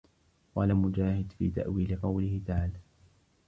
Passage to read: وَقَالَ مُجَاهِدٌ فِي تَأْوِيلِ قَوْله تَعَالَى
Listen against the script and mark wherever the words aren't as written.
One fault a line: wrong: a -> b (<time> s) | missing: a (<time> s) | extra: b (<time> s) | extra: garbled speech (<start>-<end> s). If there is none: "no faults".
no faults